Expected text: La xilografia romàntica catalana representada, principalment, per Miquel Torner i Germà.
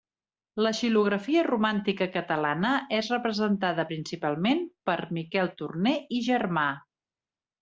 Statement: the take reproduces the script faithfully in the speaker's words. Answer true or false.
false